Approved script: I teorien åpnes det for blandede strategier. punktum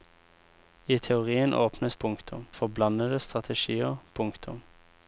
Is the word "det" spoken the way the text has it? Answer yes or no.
no